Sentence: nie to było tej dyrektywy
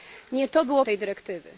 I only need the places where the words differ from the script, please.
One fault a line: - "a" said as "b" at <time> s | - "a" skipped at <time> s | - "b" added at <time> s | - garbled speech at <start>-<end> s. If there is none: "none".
none